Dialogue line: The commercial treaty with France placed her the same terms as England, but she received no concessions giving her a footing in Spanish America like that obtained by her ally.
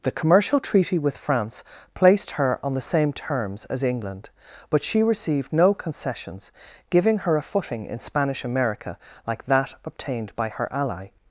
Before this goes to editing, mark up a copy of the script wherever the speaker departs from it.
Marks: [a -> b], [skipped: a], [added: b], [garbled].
The commercial treaty with France placed her [added: on] the same terms as England, but she received no concessions giving her a footing in Spanish America like that obtained by her ally.